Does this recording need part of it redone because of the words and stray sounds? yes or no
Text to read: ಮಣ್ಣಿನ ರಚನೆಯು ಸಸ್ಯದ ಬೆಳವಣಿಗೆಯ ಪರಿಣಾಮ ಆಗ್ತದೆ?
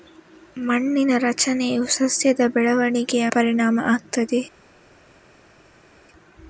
no